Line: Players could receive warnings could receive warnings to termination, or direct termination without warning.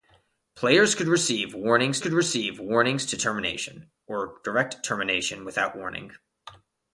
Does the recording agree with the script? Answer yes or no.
yes